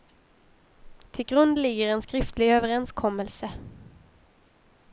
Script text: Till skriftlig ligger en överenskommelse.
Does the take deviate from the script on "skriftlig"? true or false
true